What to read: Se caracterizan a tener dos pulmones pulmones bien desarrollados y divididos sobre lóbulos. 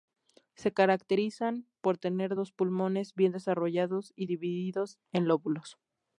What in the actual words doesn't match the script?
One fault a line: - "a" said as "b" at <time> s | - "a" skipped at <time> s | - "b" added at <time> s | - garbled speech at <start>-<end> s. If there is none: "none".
- "a" said as "por" at 1.8 s
- "pulmones" skipped at 3.1 s
- "sobre" said as "en" at 5.1 s